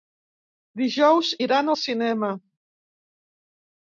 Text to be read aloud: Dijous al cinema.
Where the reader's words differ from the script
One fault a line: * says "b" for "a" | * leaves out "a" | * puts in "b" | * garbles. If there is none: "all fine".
* puts in "iran"